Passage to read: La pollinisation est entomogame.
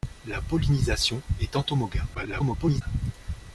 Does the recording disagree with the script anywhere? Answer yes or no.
yes